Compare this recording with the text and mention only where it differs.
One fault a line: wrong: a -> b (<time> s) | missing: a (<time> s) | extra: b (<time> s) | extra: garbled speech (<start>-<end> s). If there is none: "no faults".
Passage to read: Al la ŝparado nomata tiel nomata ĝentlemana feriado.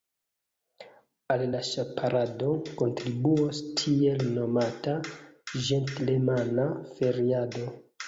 wrong: nomata -> kontribuos (2.8 s)